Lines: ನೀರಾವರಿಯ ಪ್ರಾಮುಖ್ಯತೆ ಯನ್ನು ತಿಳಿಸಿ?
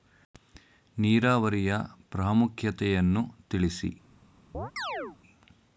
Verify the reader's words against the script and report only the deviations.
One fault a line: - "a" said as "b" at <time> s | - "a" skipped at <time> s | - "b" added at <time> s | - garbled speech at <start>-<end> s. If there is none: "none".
none